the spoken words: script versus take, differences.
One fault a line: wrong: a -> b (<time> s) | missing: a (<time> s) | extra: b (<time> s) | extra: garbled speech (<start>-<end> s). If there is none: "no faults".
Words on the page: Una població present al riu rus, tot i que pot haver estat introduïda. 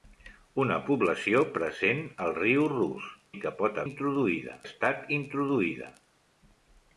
missing: tot (3.1 s)
wrong: haver -> introduïda (3.9 s)